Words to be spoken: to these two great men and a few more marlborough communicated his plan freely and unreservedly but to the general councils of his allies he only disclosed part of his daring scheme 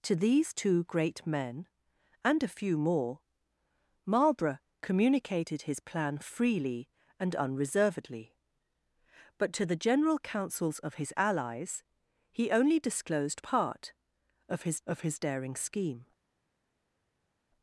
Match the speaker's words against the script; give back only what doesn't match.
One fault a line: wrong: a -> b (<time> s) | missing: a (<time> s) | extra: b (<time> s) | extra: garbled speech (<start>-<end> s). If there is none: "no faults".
extra: of his (14.9 s)